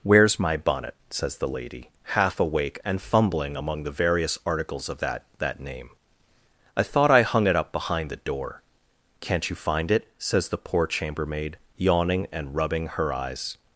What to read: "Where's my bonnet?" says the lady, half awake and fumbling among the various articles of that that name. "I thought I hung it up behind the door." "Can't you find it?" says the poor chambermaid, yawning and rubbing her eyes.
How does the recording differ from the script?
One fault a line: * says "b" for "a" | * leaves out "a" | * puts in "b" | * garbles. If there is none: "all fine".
all fine